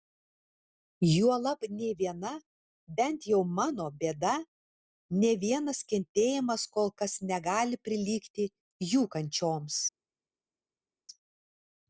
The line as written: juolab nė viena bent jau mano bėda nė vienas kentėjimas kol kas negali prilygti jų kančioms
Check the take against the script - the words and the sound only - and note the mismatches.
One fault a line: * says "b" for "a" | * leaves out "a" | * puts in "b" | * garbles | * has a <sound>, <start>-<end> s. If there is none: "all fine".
all fine